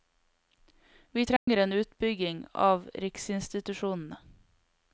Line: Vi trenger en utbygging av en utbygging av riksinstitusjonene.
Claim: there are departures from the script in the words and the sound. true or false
true